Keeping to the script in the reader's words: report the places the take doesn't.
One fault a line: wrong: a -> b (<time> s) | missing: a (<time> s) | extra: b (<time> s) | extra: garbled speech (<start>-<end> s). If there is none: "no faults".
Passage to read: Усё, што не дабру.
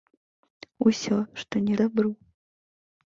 no faults